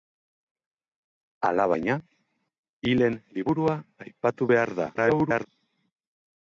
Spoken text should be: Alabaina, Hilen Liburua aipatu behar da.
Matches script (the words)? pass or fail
fail